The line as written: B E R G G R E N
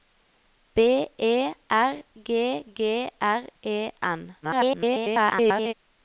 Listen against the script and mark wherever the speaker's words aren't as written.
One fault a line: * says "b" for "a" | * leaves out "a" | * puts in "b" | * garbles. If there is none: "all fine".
* garbles